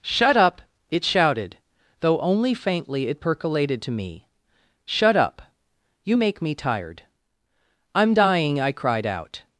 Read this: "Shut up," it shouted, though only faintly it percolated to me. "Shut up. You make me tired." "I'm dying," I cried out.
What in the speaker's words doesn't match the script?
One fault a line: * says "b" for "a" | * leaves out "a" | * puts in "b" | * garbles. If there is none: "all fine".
all fine